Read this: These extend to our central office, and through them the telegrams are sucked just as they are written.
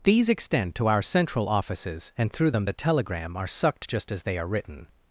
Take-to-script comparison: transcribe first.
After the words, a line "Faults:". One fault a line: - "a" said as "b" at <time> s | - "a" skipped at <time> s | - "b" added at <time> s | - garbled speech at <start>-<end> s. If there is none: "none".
These extend to our central offices, and through them the telegram are sucked just as they are written.
Faults:
- "office" said as "offices" at 1.5 s
- "telegrams" said as "telegram" at 2.7 s